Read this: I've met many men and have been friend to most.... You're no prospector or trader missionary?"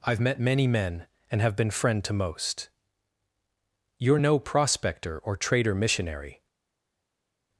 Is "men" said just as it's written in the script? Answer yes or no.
yes